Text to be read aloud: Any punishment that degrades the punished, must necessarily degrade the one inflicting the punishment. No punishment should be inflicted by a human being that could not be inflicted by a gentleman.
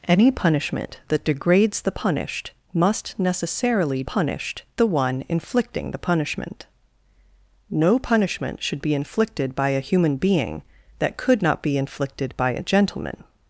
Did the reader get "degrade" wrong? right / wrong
wrong